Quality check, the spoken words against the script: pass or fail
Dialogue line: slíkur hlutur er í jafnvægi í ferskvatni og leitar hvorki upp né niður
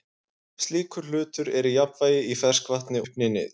fail